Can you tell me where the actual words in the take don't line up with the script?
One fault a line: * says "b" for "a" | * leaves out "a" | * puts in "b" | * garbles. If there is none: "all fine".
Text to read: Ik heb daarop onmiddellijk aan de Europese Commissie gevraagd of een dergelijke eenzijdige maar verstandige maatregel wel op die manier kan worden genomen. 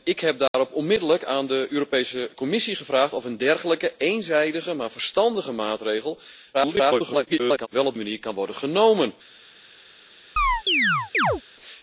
* garbles
* leaves out "die"